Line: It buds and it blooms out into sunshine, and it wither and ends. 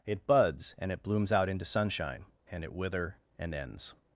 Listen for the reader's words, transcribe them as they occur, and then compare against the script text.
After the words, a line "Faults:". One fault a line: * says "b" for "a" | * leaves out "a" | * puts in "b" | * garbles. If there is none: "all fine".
It buds and it blooms out into sunshine, and it wither and ends.
Faults:
all fine